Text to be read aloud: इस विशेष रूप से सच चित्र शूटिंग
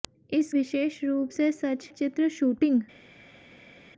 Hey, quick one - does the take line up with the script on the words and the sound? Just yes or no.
yes